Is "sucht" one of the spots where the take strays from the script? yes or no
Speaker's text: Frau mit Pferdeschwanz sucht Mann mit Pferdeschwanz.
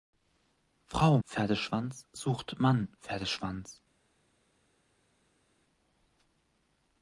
no